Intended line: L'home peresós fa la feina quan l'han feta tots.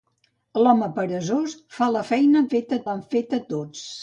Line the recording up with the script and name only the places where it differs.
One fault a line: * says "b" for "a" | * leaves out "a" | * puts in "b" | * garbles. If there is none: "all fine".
* says "feta" for "quan"